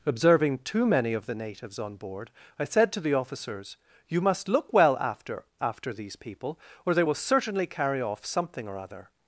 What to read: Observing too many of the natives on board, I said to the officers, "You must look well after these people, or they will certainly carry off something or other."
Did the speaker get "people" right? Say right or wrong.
right